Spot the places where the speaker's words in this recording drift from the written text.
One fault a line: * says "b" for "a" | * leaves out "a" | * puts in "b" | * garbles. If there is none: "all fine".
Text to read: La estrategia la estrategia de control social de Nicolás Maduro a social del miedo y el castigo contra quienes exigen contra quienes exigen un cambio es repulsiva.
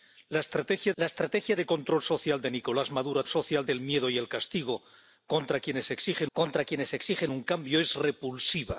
all fine